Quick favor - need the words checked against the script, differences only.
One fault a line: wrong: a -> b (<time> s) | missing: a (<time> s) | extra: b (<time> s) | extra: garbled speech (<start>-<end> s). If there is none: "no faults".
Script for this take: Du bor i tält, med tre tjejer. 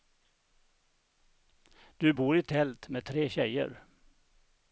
no faults